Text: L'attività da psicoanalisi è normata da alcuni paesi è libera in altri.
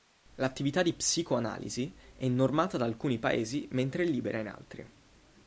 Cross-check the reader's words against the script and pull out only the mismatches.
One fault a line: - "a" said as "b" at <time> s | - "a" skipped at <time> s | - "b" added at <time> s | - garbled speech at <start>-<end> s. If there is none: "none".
- "da" said as "di" at 0.8 s
- "mentre" added at 3.7 s